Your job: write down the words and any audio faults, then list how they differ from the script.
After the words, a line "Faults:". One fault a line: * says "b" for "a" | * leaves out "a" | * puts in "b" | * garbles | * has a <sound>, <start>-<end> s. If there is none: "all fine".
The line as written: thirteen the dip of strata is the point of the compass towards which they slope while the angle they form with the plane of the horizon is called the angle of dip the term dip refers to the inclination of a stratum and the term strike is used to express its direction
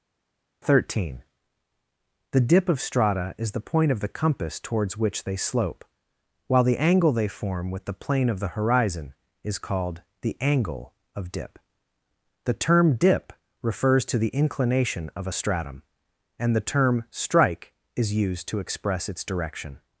thirteen the dip of strata is the point of the compass towards which they slope while the angle they form with the plane of the horizon is called the angle of dip the term dip refers to the inclination of a stratum and the term strike is used to express its direction
Faults:
all fine